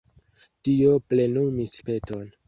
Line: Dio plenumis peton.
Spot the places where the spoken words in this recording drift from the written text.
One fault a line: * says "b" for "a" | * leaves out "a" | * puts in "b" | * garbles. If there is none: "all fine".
all fine